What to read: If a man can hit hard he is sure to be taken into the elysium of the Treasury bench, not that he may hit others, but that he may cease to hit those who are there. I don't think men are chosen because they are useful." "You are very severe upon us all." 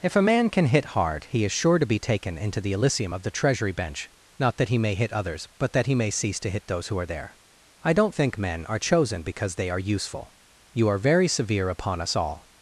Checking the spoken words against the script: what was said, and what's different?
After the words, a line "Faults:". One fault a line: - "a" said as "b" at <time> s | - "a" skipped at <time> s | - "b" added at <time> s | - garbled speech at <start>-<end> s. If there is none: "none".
If a man can hit hard he is sure to be taken into the elysium of the Treasury bench, not that he may hit others, but that he may cease to hit those who are there. I don't think men are chosen because they are useful." "You are very severe upon us all."
Faults:
none